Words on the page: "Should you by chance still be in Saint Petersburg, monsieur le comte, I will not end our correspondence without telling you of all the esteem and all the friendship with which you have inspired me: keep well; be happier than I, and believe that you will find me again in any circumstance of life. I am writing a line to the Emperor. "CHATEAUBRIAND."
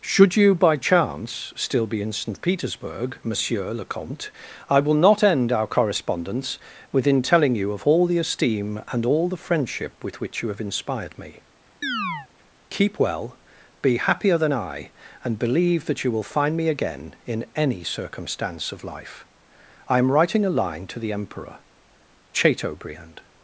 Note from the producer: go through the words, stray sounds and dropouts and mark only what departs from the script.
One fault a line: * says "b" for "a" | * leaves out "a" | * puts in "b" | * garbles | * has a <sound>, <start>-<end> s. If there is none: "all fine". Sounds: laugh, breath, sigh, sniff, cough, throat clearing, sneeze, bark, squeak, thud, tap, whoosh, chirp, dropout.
* says "within" for "without"
* has a chirp, 11.8-12.3 s